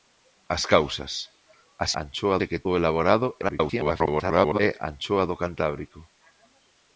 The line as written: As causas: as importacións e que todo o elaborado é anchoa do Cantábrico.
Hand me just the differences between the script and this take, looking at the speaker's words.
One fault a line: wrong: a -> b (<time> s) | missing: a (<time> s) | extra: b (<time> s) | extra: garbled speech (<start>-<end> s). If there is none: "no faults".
wrong: importacións -> anchoa (2.0 s)
missing: todo (2.6 s)
extra: garbled speech (3.4-4.6 s)